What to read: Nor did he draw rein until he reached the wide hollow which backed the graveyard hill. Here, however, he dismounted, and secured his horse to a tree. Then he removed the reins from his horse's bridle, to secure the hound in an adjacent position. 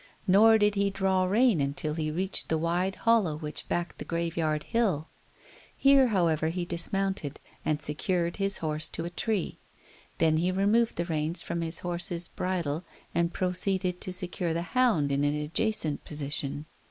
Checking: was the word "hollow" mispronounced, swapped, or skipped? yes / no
no